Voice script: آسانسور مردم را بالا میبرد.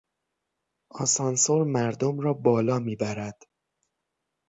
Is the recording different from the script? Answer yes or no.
no